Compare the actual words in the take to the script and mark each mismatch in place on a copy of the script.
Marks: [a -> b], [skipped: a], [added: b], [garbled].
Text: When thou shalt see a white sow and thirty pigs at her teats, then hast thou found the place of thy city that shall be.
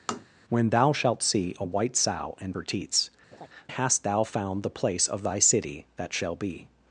When thou shalt see a white sow and [skipped: thirty pigs at] her teats, [skipped: then] hast thou found the place of thy city that shall be.